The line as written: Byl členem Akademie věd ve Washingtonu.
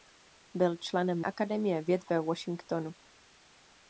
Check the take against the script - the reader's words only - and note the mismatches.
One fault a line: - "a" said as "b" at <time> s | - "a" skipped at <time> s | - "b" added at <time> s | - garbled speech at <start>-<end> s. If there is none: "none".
none